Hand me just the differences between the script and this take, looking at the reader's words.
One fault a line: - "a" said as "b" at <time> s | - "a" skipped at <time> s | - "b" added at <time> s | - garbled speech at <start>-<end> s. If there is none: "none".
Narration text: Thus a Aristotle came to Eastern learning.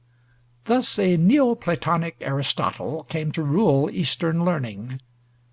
- "Neo Platonic" added at 1.1 s
- "rule" added at 3.4 s